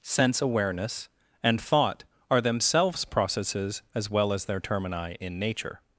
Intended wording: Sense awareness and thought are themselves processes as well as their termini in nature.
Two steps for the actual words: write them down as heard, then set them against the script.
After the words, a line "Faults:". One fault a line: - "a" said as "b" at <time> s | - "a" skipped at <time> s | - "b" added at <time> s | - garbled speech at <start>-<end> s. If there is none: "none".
Sense awareness and thought are themselves processes as well as their termini in nature.
Faults:
none